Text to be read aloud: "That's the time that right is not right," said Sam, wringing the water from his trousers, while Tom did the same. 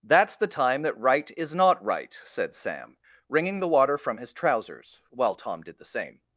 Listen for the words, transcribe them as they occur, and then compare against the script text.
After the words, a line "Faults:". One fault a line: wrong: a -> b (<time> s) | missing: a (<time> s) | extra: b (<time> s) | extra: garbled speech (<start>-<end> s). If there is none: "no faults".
"That's the time that right is not right," said Sam, wringing the water from his trousers, while Tom did the same.
Faults:
no faults